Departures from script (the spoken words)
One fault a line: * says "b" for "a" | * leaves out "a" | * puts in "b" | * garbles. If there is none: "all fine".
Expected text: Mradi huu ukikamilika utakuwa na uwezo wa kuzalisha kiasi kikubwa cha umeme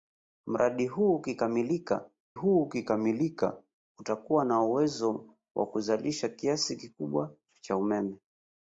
* puts in "huu ukikamilika"